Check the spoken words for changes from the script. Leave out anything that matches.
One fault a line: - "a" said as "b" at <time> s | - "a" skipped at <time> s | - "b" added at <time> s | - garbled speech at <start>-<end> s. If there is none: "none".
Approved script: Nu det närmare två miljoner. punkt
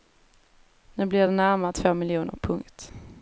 - "blir" added at 1.1 s